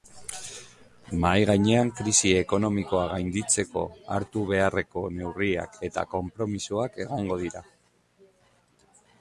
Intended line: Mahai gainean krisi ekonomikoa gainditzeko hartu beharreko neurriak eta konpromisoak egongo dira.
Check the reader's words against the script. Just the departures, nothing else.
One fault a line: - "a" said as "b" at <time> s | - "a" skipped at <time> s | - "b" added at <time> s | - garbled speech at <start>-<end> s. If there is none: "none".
none